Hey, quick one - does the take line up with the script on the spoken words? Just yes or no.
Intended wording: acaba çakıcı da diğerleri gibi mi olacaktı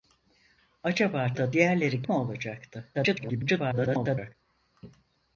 no